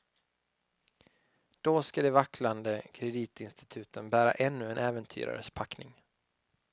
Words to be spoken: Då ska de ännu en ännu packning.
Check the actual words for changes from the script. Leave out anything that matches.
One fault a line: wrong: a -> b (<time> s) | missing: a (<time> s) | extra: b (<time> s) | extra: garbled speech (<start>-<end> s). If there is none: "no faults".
extra: vacklande kreditinstituten bära (2.1 s)
wrong: ännu -> äventyrares (4.8 s)